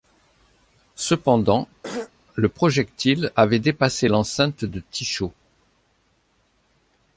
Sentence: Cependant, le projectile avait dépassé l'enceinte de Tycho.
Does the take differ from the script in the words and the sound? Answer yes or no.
yes